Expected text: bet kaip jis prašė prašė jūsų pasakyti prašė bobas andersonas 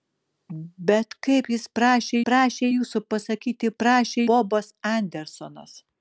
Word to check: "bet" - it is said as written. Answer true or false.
true